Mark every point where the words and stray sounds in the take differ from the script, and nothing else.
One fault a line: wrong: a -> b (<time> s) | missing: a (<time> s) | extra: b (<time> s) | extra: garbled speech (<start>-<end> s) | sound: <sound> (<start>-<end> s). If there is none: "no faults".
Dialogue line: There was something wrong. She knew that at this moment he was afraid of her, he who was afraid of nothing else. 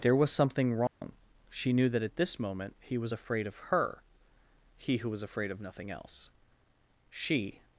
sound: dropout (0.9-1.0 s)
extra: She (7.1 s)